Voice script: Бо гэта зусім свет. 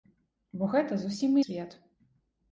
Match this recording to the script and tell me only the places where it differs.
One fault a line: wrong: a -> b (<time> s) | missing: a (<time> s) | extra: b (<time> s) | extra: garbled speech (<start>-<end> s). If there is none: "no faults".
no faults